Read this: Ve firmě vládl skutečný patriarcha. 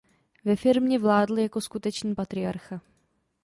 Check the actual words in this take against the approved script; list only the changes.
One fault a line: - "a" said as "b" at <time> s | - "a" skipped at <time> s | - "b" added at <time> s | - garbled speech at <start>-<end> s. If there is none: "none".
- "jako" added at 1.4 s